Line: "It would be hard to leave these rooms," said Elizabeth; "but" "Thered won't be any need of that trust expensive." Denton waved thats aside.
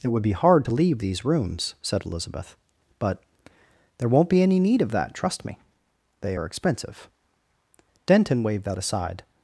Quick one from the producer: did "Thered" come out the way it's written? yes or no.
no